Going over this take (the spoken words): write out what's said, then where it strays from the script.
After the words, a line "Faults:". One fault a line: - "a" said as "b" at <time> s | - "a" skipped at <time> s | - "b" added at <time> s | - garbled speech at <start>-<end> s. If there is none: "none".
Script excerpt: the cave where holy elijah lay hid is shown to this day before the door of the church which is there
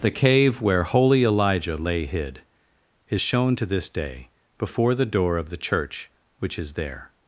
the cave where holy elijah lay hid is shown to this day before the door of the church which is there
Faults:
none